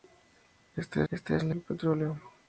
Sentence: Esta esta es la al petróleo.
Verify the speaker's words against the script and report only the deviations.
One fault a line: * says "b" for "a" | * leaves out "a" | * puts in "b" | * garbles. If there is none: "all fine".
all fine